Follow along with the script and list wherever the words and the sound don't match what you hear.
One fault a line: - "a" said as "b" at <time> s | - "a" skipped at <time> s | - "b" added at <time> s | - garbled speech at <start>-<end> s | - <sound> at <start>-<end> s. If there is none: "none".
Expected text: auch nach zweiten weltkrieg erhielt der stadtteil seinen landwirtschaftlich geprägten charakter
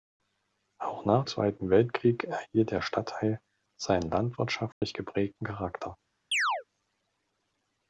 - dropout at 4.7-4.8 s
- chirp at 6.3-6.6 s